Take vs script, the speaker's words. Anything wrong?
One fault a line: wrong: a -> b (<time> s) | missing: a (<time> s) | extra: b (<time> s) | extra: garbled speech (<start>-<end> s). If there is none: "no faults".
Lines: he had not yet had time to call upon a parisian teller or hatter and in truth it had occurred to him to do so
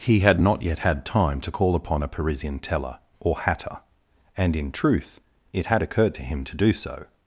no faults